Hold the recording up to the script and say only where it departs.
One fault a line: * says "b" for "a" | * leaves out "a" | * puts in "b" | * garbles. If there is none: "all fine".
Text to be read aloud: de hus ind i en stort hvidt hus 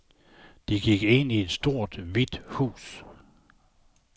* says "gik" for "hus"
* says "et" for "en"